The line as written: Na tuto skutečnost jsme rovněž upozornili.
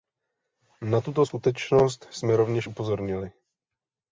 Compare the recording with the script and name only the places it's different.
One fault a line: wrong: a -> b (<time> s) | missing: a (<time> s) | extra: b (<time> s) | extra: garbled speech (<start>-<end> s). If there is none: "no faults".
no faults